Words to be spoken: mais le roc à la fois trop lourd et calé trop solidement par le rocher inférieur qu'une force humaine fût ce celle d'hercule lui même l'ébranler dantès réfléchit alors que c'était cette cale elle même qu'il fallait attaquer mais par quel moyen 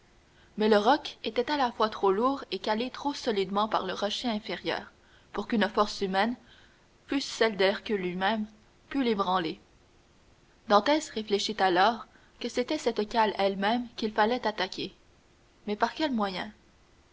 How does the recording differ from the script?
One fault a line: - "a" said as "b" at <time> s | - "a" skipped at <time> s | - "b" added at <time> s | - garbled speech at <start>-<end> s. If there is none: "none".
- "était" added at 1.2 s
- "pour" added at 5.3 s
- "pût" added at 8.9 s